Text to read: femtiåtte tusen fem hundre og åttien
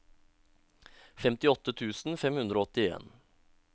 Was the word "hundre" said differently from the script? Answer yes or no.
no